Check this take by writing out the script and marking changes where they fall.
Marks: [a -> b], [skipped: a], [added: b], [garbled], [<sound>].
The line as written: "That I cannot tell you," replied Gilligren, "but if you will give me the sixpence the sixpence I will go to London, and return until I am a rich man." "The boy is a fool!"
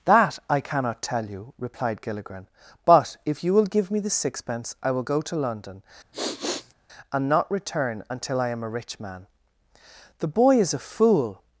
"That I cannot tell you," replied Gilligren, "but if you will give me the sixpence [skipped: the sixpence] I will go to London, [sniff] and [added: not] return until I am a rich man." "The boy is a fool!"